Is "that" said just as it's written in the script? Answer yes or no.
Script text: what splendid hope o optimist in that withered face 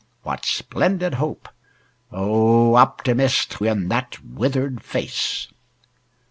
yes